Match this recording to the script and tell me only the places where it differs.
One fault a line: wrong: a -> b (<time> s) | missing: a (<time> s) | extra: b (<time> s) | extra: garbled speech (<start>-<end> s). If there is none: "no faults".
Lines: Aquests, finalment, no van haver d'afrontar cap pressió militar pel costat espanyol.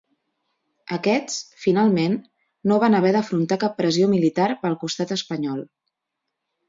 no faults